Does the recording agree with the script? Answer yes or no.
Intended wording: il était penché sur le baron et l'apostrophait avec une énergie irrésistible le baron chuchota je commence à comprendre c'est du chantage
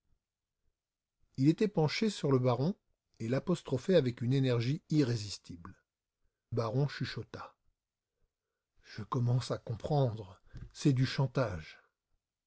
no